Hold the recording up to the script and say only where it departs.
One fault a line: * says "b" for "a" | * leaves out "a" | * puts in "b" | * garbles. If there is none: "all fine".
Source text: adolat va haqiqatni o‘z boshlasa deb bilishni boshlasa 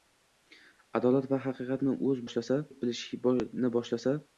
all fine